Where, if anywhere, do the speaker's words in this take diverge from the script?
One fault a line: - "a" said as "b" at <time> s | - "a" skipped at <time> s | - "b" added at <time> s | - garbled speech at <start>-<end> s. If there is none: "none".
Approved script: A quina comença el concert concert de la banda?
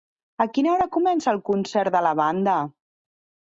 - "hora" added at 0.8 s
- "concert" skipped at 1.9 s